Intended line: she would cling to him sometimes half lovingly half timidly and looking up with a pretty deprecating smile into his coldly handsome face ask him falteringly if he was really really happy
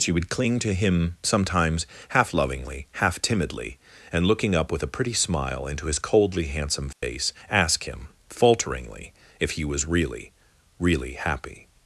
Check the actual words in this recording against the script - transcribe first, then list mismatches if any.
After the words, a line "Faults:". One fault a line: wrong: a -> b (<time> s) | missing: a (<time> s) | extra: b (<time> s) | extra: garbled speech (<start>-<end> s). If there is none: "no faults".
she would cling to him sometimes half lovingly half timidly and looking up with a pretty smile into his coldly handsome face ask him falteringly if he was really really happy
Faults:
missing: deprecating (5.1 s)